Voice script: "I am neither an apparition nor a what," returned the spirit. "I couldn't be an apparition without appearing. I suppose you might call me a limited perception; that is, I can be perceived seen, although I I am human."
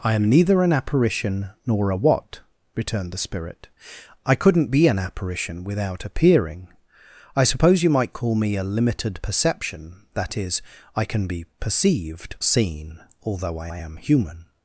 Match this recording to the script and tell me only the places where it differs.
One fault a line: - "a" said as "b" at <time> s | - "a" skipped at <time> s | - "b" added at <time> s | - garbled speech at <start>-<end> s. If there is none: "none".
none